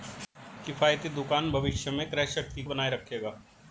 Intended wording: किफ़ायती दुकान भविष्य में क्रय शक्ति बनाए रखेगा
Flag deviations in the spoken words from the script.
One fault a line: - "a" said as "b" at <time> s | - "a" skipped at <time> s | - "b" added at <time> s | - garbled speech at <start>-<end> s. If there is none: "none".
none